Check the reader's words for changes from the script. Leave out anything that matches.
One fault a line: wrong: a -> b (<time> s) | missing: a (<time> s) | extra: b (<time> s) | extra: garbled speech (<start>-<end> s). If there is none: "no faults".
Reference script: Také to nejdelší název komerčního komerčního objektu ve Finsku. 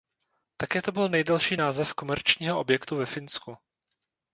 extra: byl (0.9 s)
missing: komerčního (2.6 s)